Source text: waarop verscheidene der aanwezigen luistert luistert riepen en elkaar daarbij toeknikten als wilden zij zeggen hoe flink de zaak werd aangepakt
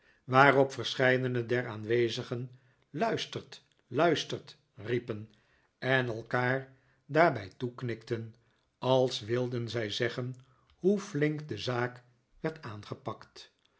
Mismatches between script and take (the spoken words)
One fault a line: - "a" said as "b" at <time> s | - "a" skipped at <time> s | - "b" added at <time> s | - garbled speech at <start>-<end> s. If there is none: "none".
none